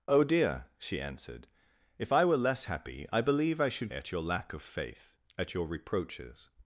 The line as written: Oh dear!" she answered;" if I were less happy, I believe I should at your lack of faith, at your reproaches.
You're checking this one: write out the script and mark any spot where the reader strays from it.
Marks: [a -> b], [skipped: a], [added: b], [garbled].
Oh dear!" she answered;" if I were less happy, I believe I should at your lack of faith, at your reproaches.